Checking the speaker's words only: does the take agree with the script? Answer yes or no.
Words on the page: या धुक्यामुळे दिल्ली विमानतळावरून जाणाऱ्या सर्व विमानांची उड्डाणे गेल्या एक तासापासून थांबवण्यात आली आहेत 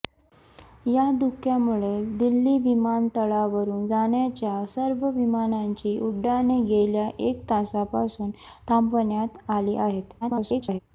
no